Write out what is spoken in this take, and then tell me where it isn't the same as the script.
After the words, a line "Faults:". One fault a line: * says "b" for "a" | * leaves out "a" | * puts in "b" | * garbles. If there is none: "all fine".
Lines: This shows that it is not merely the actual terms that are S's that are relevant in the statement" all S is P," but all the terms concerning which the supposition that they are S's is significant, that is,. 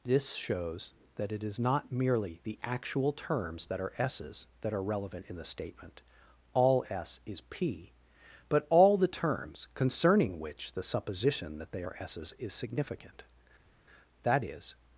This shows that it is not merely the actual terms that are S's that are relevant in the statement" all S is P," but all the terms concerning which the supposition that they are S's is significant, that is,.
Faults:
all fine